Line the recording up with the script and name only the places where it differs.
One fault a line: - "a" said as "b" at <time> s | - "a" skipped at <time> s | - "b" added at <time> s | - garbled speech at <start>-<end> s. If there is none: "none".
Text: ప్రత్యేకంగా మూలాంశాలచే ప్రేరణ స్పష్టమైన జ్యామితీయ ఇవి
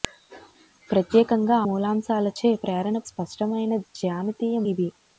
none